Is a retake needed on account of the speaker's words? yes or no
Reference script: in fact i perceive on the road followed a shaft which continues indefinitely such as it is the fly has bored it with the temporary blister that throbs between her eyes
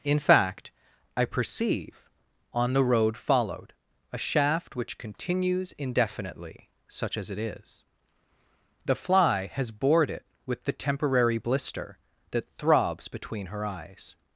no